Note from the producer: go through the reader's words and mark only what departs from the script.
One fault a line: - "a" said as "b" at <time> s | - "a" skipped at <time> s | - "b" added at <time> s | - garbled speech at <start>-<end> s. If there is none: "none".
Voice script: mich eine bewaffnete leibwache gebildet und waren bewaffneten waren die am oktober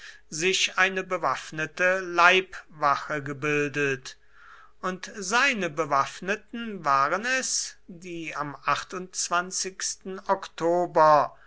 - "mich" said as "sich" at 0.3 s
- "waren" said as "seine" at 5.2 s
- "es" added at 7.3 s